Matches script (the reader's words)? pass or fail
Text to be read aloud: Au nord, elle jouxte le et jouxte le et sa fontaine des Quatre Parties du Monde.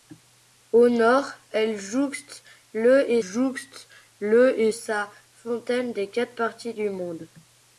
pass